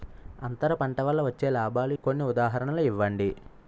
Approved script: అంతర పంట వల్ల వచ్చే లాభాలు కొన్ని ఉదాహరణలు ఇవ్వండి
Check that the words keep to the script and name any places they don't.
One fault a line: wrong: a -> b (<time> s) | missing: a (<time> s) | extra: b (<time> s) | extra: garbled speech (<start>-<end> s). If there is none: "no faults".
no faults